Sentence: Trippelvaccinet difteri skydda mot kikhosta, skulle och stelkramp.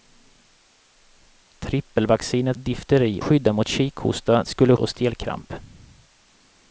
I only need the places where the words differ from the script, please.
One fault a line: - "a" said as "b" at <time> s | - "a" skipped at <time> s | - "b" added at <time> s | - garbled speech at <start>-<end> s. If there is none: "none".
none